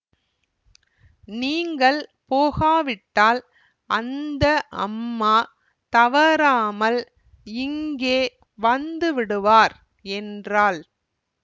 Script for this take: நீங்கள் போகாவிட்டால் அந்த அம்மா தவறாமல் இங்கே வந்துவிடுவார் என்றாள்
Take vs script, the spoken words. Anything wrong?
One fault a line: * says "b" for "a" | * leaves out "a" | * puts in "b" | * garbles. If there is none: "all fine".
all fine